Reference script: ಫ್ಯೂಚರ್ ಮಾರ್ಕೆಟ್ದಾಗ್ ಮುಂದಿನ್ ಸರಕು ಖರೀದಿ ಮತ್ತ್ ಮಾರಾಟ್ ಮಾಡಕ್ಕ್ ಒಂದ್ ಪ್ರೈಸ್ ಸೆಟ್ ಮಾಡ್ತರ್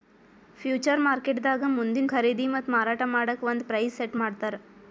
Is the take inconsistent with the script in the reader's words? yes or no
yes